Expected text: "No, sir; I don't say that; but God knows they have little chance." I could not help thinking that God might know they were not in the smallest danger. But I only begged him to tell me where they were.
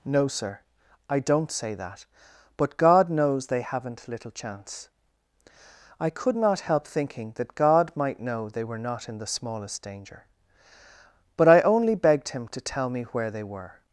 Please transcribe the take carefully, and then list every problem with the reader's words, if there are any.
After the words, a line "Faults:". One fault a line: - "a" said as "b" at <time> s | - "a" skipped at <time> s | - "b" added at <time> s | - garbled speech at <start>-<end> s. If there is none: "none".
"No, sir; I don't say that; but God knows they haven't little chance." I could not help thinking that God might know they were not in the smallest danger. But I only begged him to tell me where they were.
Faults:
- "have" said as "haven't" at 3.6 s